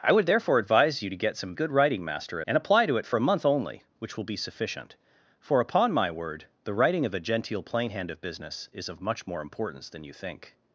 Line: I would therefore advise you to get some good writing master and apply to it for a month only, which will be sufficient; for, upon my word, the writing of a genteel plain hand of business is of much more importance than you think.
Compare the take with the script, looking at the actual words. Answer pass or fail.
pass